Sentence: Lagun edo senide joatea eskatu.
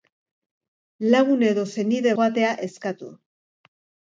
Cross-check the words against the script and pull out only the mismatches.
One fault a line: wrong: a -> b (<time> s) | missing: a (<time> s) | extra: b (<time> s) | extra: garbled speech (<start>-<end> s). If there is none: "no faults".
no faults